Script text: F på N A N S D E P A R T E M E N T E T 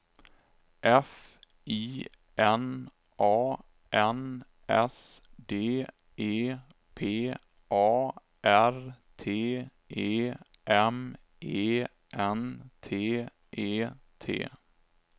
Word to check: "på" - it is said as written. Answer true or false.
false